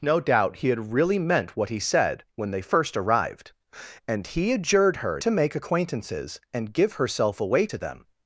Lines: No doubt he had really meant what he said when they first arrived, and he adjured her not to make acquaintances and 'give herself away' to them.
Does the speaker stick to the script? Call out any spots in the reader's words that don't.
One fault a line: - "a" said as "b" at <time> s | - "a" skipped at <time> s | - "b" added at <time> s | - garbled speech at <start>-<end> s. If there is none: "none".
- "not" skipped at 5.2 s